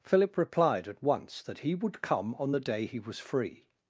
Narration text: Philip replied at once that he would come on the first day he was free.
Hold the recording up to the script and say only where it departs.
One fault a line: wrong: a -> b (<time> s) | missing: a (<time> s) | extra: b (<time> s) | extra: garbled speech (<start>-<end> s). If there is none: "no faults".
missing: first (2.6 s)